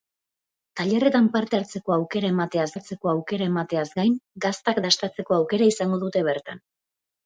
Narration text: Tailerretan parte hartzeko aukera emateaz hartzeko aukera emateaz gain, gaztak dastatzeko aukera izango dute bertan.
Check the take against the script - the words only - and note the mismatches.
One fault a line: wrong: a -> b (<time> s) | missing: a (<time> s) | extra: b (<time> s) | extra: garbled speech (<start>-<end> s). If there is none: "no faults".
no faults